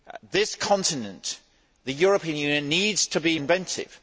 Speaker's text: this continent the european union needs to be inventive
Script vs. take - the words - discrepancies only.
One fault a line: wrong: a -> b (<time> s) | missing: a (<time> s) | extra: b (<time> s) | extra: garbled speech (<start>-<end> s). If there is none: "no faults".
no faults